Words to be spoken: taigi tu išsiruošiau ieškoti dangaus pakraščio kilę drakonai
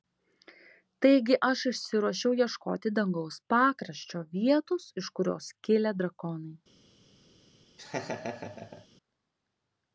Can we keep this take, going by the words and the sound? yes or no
no